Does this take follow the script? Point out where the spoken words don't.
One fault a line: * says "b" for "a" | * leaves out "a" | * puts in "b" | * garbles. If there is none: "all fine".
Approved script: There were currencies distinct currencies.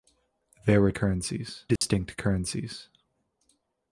all fine